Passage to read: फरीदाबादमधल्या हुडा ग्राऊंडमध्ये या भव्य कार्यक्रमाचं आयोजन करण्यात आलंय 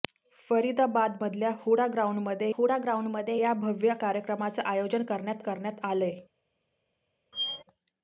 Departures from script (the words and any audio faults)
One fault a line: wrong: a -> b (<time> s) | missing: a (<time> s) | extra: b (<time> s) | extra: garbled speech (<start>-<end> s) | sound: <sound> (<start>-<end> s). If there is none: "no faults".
extra: हुडा ग्राऊंडमध्ये (2.5 s)
extra: करण्यात (5.4 s)
sound: squeak (7.3-7.6 s)